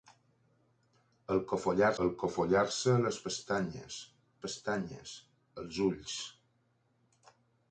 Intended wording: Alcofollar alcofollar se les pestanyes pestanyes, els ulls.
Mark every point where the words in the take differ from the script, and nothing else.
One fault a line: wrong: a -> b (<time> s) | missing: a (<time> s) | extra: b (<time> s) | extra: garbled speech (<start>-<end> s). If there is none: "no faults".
no faults